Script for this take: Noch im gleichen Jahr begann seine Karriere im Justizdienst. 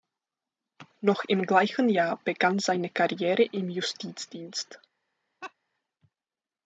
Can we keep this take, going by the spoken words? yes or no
yes